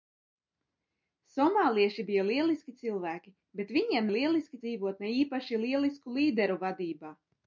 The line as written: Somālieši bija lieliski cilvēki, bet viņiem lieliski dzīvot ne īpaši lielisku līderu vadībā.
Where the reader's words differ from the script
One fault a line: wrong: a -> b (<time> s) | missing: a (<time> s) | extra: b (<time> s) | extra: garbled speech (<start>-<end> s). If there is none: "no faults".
no faults